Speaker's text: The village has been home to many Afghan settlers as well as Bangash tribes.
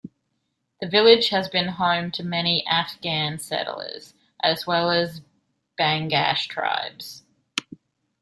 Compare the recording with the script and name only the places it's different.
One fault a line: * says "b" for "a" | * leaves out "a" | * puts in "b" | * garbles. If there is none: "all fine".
all fine